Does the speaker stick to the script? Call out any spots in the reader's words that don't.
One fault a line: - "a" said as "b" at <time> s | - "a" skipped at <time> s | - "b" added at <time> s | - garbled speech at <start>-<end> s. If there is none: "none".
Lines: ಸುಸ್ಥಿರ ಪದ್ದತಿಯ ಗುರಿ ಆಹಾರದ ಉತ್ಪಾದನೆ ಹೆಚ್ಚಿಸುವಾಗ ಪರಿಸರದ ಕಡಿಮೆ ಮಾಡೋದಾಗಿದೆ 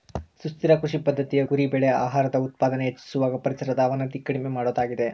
- "ಕೃಷಿ" added at 0.8 s
- "ಬೆಳೆ" added at 1.7 s
- "ಅವನತಿ" added at 3.8 s